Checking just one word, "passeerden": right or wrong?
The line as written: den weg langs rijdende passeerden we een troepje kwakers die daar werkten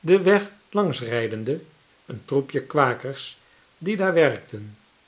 wrong